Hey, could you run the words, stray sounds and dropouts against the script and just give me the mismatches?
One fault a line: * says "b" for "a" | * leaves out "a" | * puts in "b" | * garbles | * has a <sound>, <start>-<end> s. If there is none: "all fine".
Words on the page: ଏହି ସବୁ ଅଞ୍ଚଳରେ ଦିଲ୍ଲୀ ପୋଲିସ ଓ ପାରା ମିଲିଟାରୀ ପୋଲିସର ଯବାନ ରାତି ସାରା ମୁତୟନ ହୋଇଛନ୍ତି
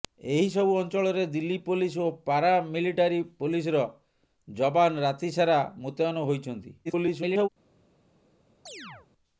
* garbles
* has a chirp, 8.7-9.1 s